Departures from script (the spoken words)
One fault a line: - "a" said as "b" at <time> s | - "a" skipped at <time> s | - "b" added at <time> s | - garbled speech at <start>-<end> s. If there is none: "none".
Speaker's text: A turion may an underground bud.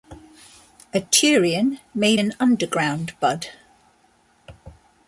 none